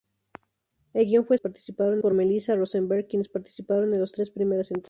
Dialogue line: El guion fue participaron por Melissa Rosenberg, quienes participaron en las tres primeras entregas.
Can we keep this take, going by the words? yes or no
yes